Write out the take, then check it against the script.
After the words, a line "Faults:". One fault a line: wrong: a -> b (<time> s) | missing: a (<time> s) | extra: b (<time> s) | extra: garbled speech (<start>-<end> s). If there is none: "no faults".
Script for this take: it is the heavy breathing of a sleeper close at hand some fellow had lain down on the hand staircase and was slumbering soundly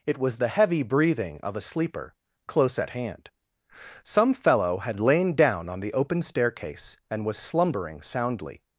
it was the heavy breathing of a sleeper close at hand some fellow had lain down on the open staircase and was slumbering soundly
Faults:
wrong: is -> was (0.2 s)
wrong: hand -> open (5.9 s)